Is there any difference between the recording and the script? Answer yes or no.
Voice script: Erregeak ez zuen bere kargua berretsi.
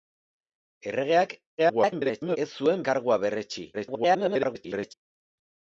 yes